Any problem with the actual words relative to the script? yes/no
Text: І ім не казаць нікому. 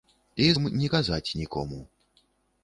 no